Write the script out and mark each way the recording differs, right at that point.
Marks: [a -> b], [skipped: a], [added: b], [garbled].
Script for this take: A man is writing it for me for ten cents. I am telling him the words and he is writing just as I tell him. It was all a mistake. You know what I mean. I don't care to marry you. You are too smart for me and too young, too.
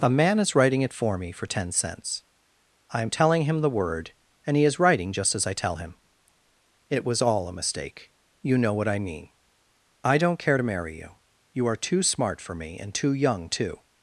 A man is writing it for me for ten cents. I am telling him the [words -> word] and he is writing just as I tell him. It was all a mistake. You know what I mean. I don't care to marry you. You are too smart for me and too young, too.